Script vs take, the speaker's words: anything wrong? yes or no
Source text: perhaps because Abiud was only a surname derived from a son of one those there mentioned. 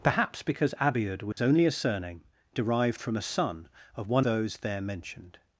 no